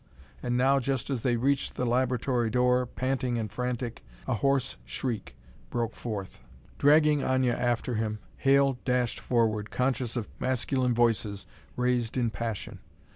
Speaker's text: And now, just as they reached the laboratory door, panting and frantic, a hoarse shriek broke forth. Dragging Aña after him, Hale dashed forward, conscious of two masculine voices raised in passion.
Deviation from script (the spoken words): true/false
true